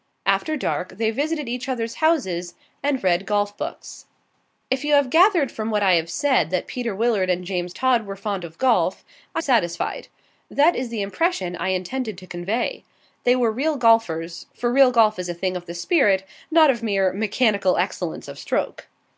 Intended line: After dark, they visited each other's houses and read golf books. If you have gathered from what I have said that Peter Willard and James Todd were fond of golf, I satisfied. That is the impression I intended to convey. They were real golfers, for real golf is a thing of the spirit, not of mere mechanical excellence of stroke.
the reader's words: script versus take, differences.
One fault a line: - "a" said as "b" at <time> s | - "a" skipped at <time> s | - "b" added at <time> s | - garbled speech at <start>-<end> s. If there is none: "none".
none